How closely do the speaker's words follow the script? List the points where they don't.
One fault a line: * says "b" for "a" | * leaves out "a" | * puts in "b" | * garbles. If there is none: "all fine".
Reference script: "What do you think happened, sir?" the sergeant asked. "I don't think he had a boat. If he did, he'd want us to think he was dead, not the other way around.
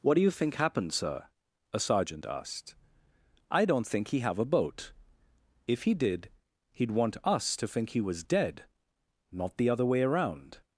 * says "a" for "the"
* says "have" for "had"